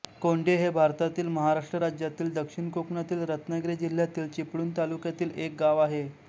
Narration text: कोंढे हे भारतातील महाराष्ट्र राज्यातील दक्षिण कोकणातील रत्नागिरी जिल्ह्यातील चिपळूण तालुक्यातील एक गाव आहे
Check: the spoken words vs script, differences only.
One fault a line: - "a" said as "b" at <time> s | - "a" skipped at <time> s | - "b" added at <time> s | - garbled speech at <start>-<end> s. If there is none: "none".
none